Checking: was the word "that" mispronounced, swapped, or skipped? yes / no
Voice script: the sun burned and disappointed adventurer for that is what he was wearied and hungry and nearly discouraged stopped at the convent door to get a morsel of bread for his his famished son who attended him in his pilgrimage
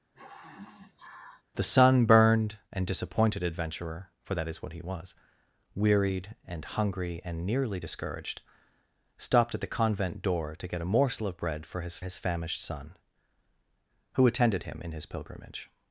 no